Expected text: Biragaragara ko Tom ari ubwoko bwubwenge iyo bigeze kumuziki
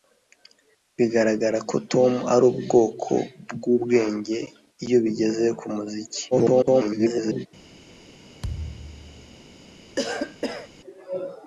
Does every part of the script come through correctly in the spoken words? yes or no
no